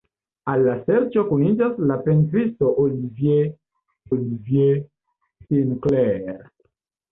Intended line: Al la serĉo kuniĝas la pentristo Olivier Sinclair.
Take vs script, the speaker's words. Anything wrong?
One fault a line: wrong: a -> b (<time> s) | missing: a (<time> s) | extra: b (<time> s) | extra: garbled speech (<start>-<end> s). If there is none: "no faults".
extra: Olivier (4.1 s)